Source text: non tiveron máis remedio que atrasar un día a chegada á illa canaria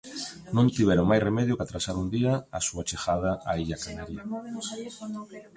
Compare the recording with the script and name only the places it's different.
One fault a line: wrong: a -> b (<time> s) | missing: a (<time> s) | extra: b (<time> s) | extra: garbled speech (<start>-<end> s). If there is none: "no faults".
extra: súa (2.7 s)